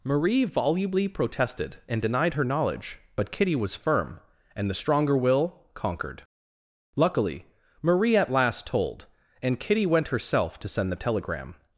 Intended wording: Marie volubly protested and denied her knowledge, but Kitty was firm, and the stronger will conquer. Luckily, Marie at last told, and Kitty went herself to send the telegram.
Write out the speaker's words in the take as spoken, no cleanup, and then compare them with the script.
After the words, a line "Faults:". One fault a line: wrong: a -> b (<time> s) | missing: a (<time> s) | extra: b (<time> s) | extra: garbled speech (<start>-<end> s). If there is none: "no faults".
Marie volubly protested and denied her knowledge, but Kitty was firm, and the stronger will conquered. Luckily, Marie at last told, and Kitty went herself to send the telegram.
Faults:
wrong: conquer -> conquered (5.8 s)